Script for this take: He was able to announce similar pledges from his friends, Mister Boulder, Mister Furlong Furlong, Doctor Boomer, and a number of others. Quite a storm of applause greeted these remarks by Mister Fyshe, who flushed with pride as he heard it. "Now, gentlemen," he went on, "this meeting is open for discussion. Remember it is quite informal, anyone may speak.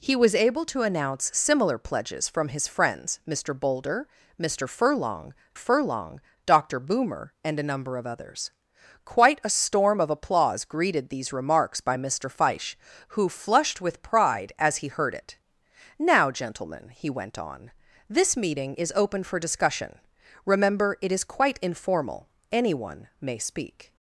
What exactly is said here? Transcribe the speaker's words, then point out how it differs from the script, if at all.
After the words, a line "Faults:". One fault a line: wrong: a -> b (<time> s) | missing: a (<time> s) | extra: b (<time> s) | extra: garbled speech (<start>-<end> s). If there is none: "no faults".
He was able to announce similar pledges from his friends, Mister Boulder, Mister Furlong Furlong, Doctor Boomer, and a number of others. Quite a storm of applause greeted these remarks by Mister Fyshe, who flushed with pride as he heard it. "Now, gentlemen," he went on, "this meeting is open for discussion. Remember it is quite informal, anyone may speak.
Faults:
no faults